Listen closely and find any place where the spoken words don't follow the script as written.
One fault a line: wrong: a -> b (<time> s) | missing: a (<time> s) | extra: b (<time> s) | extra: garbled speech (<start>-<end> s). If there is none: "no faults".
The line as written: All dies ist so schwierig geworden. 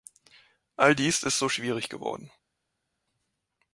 no faults